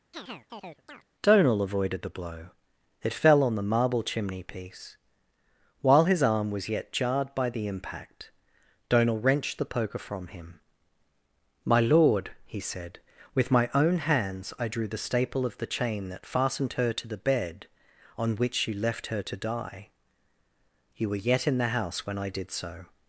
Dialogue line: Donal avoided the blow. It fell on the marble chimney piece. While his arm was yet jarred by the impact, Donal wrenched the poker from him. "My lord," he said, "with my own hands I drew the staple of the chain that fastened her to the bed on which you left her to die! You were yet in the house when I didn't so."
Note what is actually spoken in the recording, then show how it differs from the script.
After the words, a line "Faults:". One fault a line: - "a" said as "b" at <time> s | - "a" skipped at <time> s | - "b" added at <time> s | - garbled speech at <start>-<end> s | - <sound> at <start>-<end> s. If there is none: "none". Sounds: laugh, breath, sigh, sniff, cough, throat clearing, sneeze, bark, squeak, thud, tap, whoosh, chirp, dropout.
Donal avoided the blow. It fell on the marble chimney piece. While his arm was yet jarred by the impact, Donal wrenched the poker from him. "My lord," he said, "with my own hands I drew the staple of the chain that fastened her to the bed on which you left her to die! You were yet in the house when I did so."
Faults:
- chirp at 0.1-1.0 s
- "didn't" said as "did" at 22.3 s